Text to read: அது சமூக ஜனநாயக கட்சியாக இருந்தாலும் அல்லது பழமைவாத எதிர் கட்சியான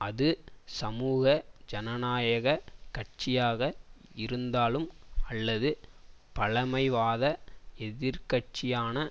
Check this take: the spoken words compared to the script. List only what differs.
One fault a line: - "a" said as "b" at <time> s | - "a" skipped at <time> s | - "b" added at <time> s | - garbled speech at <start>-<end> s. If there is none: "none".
none